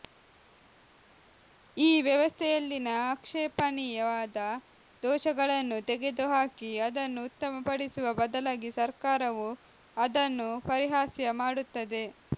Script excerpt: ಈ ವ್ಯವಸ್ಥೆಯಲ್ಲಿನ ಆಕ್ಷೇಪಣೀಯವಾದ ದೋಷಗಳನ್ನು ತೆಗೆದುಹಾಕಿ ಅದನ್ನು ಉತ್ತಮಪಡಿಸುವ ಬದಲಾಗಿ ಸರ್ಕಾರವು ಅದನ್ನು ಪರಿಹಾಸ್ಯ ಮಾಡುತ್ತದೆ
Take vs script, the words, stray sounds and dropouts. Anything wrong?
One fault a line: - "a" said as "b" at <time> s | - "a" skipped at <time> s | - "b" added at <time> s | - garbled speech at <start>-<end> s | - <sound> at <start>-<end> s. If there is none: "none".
none